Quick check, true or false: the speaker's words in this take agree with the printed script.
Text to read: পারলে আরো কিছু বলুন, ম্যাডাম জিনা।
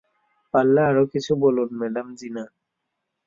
true